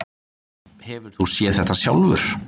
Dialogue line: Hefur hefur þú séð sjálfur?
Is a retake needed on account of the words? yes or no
yes